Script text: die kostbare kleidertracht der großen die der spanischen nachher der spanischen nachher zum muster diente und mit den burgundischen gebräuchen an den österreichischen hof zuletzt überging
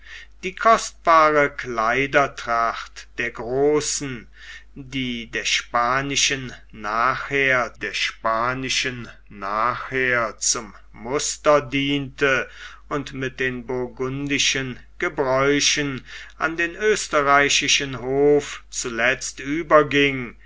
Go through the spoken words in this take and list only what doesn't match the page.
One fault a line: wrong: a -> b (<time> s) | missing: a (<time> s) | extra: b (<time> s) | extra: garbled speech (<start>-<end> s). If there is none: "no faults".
no faults